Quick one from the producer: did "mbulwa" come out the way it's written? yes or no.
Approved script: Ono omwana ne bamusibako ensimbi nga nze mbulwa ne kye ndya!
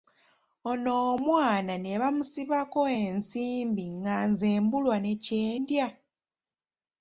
yes